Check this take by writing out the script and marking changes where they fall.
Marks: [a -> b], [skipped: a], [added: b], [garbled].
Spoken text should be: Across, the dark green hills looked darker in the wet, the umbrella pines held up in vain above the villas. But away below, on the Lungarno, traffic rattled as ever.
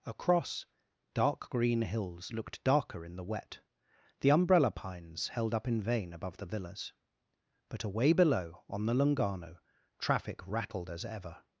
Across, [skipped: the] dark green hills looked darker in the wet, the umbrella pines held up in vain above the villas. But away below, on the Lungarno, traffic rattled as ever.